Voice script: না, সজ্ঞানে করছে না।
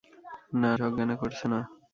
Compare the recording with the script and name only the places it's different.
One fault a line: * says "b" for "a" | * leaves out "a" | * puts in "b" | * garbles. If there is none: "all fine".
all fine